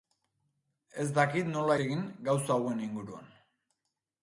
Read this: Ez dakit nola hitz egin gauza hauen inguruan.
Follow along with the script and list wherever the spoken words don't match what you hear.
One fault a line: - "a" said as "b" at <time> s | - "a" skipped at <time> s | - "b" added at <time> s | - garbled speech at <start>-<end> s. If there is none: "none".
- "hitz" skipped at 1.8 s